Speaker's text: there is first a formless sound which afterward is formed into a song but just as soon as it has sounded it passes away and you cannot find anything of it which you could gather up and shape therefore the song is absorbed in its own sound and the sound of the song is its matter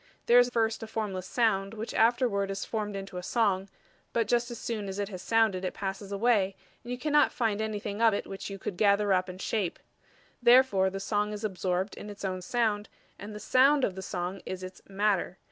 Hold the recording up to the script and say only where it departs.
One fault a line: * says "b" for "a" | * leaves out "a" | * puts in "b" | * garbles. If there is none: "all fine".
all fine